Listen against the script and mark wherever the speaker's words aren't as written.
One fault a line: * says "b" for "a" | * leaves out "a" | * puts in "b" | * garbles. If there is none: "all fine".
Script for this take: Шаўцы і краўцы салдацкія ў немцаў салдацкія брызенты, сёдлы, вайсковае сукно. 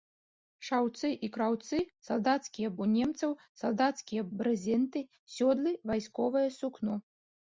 all fine